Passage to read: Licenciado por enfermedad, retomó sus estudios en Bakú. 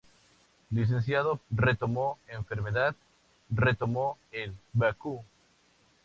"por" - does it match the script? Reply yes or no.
no